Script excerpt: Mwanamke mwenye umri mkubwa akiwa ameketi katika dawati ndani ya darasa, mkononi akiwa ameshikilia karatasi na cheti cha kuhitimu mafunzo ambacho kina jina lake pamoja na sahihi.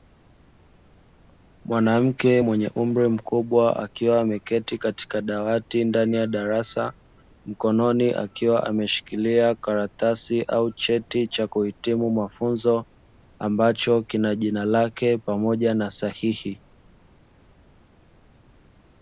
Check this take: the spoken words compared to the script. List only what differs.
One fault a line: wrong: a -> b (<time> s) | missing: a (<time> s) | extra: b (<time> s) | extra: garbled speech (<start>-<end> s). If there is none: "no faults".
wrong: na -> au (10.4 s)